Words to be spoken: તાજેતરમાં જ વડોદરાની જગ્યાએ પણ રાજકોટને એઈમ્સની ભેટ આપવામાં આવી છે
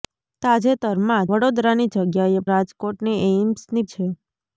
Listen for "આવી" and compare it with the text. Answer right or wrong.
wrong